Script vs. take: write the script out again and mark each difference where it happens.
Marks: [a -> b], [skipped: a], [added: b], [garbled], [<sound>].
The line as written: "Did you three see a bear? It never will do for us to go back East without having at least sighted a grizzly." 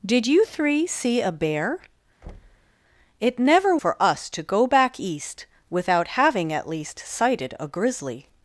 "Did you three see a bear? [thud] It never [skipped: will do] for us to go back East without having at least sighted a grizzly."